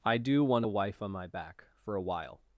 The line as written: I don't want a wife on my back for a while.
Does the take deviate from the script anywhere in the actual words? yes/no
yes